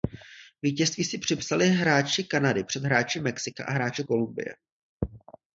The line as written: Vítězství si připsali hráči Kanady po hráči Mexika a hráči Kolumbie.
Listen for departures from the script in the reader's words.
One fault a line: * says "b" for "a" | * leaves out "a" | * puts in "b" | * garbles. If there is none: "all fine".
* says "před" for "po"